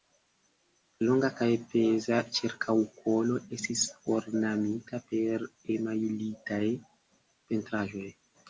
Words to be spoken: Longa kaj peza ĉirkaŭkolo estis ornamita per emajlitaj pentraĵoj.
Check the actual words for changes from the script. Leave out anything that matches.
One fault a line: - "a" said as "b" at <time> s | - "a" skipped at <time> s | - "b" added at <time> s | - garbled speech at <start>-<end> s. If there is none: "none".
none